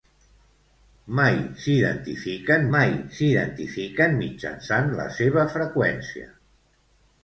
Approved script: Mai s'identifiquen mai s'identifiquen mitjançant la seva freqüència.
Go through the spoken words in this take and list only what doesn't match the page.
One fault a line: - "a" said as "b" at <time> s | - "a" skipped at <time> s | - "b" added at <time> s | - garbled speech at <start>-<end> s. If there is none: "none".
none